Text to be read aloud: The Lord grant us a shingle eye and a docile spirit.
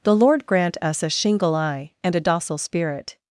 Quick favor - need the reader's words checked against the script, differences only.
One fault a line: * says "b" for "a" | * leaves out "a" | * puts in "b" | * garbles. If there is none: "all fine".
all fine